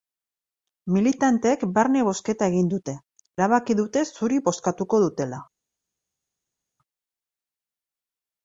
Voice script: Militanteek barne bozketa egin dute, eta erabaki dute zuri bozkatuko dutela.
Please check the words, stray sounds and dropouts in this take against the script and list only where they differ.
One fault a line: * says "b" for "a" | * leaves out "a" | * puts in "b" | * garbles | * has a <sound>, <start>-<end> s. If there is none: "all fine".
* leaves out "eta"